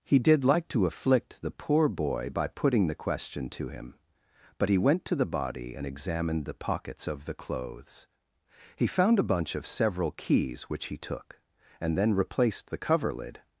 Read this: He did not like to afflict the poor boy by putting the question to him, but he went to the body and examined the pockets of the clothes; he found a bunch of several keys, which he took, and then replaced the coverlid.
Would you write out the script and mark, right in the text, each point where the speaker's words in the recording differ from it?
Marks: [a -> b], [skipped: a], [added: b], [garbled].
He did [skipped: not] like to afflict the poor boy by putting the question to him, but he went to the body and examined the pockets of the clothes; he found a bunch of several keys, which he took, and then replaced the coverlid.